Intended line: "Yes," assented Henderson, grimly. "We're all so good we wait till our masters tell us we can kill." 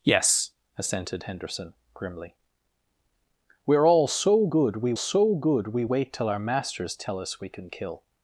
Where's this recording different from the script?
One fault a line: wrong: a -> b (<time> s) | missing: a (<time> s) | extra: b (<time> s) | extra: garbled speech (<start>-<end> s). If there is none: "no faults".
extra: so good we (5.0 s)